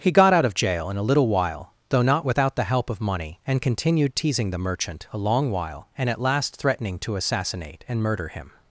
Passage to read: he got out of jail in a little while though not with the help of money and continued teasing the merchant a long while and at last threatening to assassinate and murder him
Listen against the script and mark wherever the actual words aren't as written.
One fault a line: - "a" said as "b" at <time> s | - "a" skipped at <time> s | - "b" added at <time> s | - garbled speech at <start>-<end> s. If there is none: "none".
- "with" said as "without" at 2.2 s